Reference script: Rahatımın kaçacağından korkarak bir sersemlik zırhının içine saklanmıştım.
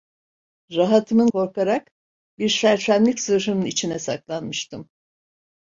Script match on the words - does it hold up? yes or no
no